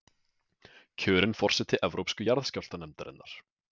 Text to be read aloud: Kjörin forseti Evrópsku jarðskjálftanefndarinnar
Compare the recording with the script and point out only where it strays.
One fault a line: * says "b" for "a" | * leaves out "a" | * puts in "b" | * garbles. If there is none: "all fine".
all fine